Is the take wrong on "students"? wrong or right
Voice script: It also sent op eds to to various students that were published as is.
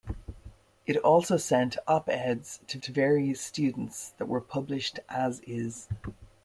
right